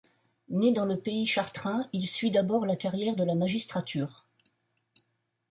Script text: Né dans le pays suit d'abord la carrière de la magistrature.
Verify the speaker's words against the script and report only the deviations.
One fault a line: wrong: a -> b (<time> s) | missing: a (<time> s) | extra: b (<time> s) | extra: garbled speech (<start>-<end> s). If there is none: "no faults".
extra: chartrain il (1.3 s)